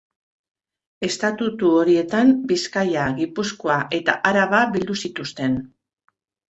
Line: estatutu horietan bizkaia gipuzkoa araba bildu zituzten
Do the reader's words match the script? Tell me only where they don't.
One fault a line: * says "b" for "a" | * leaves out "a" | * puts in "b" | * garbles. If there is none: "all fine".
* puts in "eta"